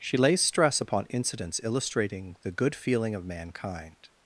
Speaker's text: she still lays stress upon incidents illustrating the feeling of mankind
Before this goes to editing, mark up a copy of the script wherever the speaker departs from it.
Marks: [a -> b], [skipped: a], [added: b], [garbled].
she [skipped: still] lays stress upon incidents illustrating the [added: good] feeling of mankind